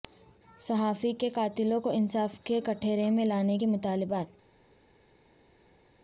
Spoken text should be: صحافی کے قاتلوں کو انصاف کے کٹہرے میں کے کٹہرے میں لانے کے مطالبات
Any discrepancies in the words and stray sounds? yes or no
yes